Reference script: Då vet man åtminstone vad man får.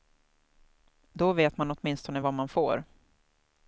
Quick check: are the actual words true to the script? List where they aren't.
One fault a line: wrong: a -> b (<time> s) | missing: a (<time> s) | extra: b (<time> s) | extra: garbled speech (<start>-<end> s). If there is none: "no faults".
no faults